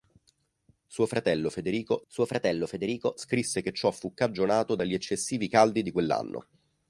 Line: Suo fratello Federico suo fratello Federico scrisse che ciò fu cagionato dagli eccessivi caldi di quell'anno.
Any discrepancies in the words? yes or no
no